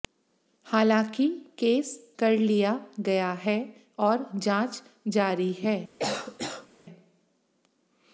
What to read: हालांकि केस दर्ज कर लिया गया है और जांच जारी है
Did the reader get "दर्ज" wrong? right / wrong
wrong